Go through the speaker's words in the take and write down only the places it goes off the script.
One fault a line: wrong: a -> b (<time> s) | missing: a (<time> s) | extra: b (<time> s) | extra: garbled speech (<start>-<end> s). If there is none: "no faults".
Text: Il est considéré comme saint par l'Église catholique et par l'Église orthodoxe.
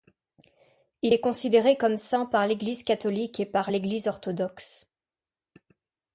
no faults